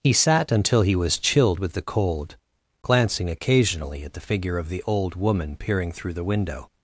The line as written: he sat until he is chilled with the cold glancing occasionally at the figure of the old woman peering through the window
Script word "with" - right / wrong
right